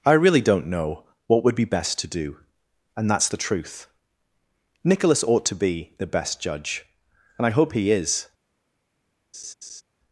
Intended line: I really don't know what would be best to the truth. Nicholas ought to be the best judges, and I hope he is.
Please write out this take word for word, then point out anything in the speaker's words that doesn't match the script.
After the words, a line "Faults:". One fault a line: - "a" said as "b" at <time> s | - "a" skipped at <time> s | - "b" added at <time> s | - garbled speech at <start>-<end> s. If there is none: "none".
I really don't know what would be best to do, and that's the truth. Nicholas ought to be the best judge, and I hope he is.
Faults:
- "do and that's" added at 2.1 s
- "judges" said as "judge" at 6.4 s